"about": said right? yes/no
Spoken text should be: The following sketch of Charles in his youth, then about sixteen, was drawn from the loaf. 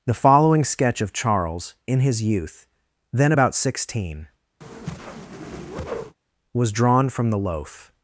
yes